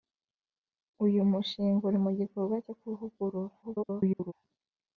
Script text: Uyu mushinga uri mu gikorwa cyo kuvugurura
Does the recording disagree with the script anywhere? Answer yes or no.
yes